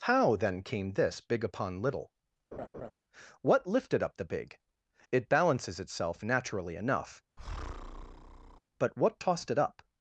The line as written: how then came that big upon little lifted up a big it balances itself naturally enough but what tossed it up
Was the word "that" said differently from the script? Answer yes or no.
yes